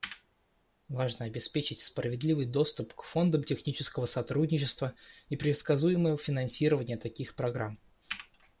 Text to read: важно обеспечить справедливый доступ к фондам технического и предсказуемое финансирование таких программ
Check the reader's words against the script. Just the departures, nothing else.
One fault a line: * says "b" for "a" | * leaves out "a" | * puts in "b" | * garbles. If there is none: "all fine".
* puts in "сотрудничества"